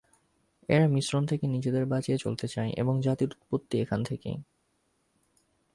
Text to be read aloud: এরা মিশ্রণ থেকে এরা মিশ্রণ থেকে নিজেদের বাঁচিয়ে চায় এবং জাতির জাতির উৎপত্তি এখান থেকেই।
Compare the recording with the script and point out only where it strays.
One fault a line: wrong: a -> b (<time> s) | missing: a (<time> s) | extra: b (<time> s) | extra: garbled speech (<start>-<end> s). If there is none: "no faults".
missing: এরা মিশ্রণ থেকে (1.4 s)
extra: চলতে (2.1 s)
missing: জাতির (3.3 s)